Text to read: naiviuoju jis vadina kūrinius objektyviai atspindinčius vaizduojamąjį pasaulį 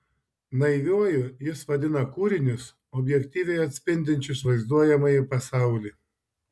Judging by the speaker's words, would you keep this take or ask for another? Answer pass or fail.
pass